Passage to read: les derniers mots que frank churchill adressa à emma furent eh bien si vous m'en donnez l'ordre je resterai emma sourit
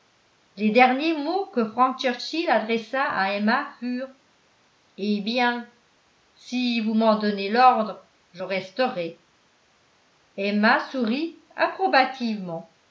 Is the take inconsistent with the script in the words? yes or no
no